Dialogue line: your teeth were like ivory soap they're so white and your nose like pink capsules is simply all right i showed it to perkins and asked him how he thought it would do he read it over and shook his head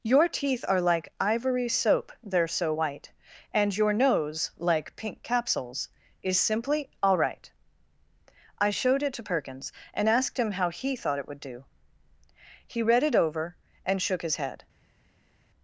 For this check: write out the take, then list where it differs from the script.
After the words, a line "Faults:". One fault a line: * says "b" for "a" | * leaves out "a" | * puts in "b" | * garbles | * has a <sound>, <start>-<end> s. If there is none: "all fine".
your teeth are like ivory soap they're so white and your nose like pink capsules is simply all right i showed it to perkins and asked him how he thought it would do he read it over and shook his head
Faults:
* says "are" for "were"